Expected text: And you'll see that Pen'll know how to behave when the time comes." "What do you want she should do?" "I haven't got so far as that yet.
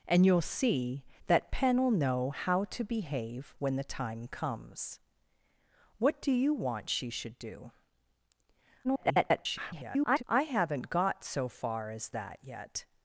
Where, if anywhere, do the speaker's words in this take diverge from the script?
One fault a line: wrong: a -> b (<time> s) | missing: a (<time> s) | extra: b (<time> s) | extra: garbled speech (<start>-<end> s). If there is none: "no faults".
extra: garbled speech (8.8-10.2 s)